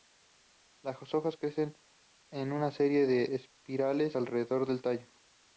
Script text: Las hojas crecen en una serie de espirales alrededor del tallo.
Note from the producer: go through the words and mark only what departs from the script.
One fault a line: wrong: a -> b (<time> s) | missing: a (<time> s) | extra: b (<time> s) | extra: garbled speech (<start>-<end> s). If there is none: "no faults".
no faults